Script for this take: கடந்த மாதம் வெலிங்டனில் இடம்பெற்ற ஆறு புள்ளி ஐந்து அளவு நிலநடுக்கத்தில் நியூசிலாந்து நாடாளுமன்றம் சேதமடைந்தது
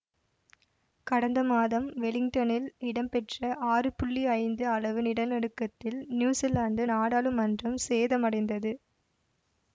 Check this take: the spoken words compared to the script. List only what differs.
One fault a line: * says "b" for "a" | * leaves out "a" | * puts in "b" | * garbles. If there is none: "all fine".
all fine